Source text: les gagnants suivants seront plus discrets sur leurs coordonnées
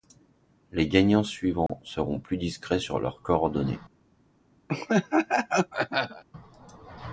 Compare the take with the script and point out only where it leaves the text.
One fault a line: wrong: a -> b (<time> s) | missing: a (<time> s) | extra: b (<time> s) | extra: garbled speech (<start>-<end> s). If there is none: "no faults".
no faults